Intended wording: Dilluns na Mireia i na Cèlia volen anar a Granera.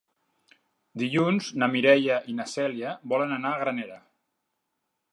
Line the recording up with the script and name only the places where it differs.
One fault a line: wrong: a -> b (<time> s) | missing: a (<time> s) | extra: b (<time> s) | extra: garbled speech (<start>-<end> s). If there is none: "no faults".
no faults